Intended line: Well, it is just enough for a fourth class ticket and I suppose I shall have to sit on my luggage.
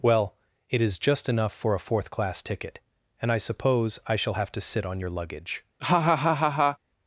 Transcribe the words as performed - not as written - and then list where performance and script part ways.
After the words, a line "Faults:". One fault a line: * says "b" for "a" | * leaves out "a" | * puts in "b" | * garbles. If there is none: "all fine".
Well, it is just enough for a fourth class ticket and I suppose I shall have to sit on your luggage.
Faults:
* says "your" for "my"